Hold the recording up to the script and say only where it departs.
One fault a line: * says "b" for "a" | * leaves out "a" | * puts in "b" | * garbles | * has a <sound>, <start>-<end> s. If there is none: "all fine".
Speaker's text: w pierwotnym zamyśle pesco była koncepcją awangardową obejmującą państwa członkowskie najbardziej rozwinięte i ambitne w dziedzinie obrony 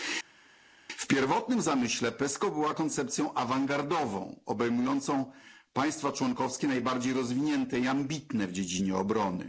all fine